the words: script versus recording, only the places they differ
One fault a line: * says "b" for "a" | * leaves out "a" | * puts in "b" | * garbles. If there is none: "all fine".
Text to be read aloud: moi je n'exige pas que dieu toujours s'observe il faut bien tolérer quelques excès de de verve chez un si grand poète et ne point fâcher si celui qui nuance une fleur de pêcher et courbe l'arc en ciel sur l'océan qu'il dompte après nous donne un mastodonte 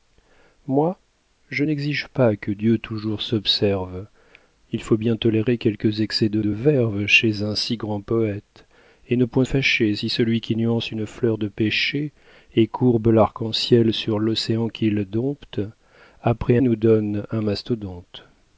all fine